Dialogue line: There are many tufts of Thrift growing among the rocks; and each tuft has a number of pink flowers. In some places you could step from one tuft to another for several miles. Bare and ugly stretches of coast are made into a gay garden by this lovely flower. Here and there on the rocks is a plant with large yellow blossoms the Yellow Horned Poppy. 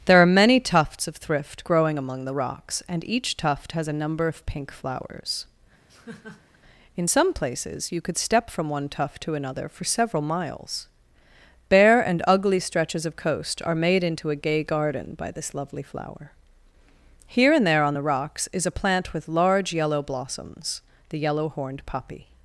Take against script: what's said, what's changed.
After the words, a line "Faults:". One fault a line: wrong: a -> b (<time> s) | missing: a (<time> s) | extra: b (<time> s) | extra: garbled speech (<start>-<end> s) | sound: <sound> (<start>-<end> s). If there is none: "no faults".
There are many tufts of Thrift growing among the rocks; and each tuft has a number of pink flowers. In some places you could step from one tuft to another for several miles. Bare and ugly stretches of coast are made into a gay garden by this lovely flower. Here and there on the rocks is a plant with large yellow blossoms the Yellow Horned Poppy.
Faults:
sound: laugh (5.9-6.6 s)